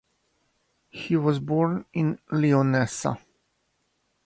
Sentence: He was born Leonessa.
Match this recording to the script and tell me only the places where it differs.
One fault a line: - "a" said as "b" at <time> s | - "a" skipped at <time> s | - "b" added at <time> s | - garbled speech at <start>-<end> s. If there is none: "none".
- "in" added at 1.9 s